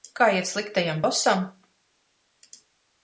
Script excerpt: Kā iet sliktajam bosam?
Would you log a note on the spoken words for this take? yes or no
no